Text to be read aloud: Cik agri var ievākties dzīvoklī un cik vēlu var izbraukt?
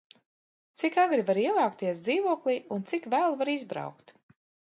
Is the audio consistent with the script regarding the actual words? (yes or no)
yes